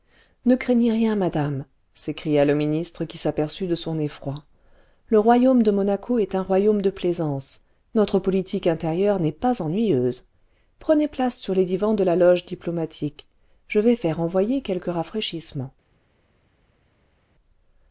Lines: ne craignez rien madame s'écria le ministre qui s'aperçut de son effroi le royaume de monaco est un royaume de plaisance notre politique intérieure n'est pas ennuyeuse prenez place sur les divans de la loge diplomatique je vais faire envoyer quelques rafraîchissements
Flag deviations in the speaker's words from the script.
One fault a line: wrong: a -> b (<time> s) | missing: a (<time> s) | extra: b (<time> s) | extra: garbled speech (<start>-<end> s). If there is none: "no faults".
no faults